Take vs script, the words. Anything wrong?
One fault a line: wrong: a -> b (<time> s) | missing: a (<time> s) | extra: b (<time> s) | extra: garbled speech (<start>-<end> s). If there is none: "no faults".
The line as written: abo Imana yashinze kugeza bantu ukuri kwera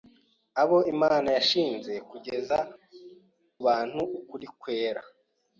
no faults